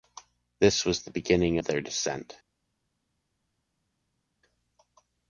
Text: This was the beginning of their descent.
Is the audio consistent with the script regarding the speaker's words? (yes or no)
yes